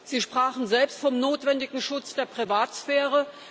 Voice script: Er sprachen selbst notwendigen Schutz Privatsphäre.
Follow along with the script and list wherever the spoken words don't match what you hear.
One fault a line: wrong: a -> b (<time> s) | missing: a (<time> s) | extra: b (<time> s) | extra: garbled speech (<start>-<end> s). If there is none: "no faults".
wrong: Er -> Sie (0.0 s)
extra: vom (1.0 s)
extra: der (2.1 s)